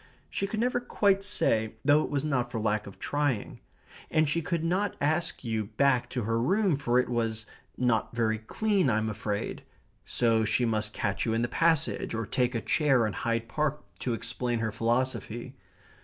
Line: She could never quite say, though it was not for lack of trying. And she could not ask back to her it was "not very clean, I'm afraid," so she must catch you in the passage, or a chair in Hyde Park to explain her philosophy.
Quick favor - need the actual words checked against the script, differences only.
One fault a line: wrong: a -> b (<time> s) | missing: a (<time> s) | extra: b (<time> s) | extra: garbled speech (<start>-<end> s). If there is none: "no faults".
extra: you (5.4 s)
extra: room for (6.4 s)
extra: take (12.2 s)